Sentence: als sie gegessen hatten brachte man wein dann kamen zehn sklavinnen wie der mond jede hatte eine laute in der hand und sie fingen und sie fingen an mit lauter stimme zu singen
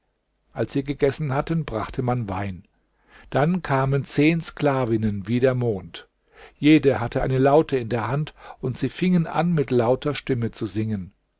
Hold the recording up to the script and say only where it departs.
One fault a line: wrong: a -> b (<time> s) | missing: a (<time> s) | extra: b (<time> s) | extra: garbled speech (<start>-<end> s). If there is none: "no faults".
missing: und sie fingen (9.3 s)